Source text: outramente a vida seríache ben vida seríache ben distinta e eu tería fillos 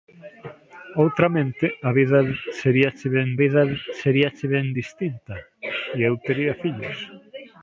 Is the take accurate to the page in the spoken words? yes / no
yes